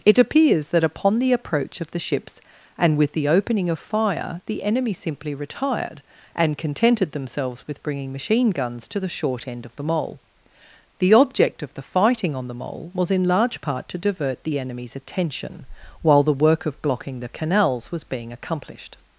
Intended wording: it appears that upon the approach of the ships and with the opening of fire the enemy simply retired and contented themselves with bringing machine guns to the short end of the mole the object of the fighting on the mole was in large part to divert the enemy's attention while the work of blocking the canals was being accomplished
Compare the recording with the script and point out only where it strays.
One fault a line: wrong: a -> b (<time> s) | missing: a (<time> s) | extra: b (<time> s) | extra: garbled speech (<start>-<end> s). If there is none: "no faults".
no faults